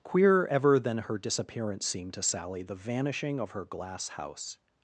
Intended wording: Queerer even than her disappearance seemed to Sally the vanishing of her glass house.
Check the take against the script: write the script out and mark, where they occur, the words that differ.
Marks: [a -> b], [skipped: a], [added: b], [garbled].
Queerer [even -> ever] than her disappearance seemed to Sally the vanishing of her glass house.